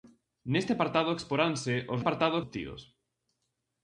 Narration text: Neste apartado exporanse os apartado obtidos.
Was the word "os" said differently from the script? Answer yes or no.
no